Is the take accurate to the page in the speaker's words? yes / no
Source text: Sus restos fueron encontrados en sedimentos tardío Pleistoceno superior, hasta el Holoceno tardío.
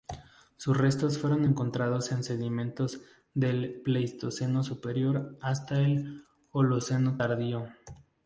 no